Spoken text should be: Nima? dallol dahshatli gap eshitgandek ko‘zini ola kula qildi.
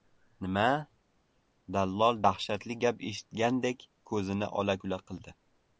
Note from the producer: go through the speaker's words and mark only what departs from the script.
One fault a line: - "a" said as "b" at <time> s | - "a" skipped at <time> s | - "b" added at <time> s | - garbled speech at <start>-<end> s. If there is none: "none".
none